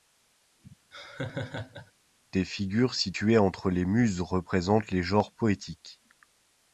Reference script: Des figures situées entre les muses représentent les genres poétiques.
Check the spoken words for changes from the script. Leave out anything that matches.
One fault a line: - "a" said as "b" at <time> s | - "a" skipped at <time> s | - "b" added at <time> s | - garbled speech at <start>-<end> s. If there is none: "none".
none